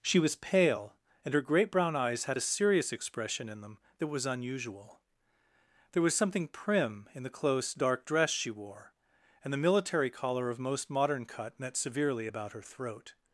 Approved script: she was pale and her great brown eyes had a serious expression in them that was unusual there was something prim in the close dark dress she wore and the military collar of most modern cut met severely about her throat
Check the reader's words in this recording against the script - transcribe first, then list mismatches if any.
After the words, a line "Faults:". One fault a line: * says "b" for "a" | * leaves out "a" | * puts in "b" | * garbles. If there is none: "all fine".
she was pale and her great brown eyes had a serious expression in them that was unusual there was something prim in the close dark dress she wore and the military collar of most modern cut met severely about her throat
Faults:
all fine